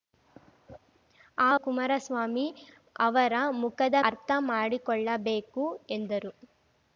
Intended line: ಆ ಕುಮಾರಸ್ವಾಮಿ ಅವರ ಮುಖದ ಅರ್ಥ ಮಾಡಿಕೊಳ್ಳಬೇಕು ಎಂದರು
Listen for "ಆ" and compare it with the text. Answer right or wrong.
right